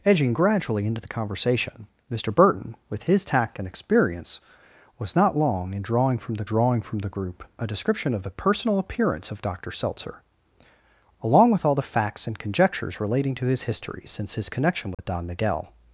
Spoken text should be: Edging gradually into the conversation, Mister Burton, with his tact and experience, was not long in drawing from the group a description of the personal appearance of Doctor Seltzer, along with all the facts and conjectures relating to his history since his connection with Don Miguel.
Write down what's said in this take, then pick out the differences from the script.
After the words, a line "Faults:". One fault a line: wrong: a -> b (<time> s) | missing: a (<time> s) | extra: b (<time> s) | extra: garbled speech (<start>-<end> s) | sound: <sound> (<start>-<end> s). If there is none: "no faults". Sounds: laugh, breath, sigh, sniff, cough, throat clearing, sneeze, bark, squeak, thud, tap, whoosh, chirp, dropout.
Edging gradually into the conversation, Mister Burton, with his tact and experience, was not long in drawing from the drawing from the group a description of the personal appearance of Doctor Seltzer, along with all the facts and conjectures relating to his history since his connection with Don Miguel.
Faults:
extra: drawing from the (6.4 s)
sound: dropout (14.9-15.0 s)